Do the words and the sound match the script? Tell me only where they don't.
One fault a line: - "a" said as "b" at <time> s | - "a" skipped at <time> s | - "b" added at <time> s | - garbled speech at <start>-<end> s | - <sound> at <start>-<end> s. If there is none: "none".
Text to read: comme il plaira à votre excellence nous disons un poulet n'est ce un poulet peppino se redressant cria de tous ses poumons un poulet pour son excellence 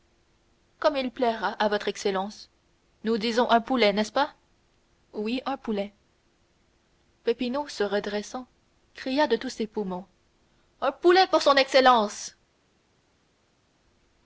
- "pas oui" added at 4.1 s